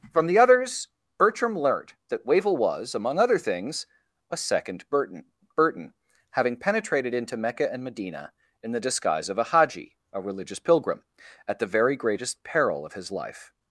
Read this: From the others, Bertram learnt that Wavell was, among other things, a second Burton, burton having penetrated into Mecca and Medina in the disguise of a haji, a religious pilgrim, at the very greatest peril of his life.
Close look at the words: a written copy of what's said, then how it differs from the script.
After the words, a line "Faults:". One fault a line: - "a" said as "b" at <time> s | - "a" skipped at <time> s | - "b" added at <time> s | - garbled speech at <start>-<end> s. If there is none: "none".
From the others, Bertram learnt that Wavell was, among other things, a second Burton, burton having penetrated into Mecca and Medina in the disguise of a haji, a religious pilgrim, at the very greatest peril of his life.
Faults:
none